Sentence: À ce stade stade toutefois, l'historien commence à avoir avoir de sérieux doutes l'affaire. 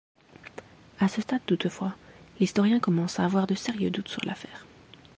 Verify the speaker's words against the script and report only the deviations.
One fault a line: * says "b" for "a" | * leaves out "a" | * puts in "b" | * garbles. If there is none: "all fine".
* leaves out "stade"
* leaves out "avoir"
* puts in "sur"